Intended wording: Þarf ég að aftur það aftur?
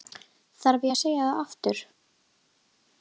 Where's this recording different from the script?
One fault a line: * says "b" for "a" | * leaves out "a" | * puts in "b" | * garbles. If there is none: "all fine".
* says "segja" for "aftur"